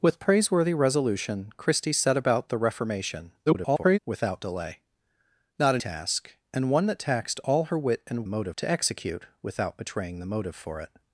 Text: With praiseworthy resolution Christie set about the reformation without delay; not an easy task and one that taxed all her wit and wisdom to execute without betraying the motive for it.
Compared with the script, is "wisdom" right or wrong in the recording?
wrong